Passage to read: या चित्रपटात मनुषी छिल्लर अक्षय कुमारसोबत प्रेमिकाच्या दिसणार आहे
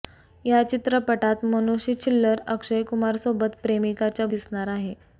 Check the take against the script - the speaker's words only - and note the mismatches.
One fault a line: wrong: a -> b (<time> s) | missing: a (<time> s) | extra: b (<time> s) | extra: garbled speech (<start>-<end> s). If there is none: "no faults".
no faults